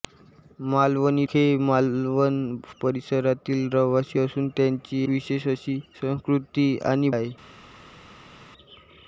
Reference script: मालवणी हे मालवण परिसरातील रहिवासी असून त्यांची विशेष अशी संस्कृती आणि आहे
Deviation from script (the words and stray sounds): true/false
false